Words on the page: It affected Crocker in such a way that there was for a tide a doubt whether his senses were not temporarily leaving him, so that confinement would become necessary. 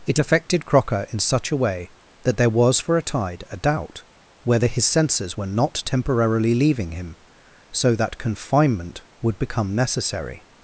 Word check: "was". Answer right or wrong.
right